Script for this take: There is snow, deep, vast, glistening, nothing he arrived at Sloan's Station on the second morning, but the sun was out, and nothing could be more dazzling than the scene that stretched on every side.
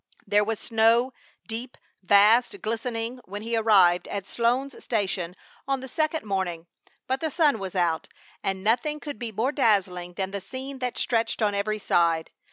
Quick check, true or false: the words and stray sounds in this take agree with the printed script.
false